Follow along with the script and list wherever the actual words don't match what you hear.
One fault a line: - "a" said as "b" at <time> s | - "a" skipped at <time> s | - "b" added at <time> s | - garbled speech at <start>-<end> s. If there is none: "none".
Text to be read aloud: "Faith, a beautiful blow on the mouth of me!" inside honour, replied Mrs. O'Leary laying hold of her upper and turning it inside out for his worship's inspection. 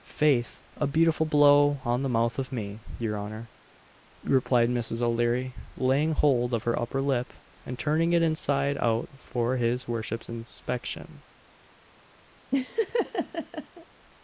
- "inside" said as "your" at 3.0 s
- "lip" added at 7.0 s